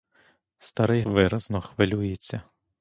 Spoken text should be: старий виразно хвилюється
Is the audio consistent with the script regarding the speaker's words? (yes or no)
yes